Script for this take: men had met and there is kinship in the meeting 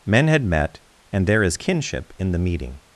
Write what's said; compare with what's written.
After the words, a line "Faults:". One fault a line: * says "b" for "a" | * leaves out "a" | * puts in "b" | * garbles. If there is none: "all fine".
men had met and there is kinship in the meeting
Faults:
all fine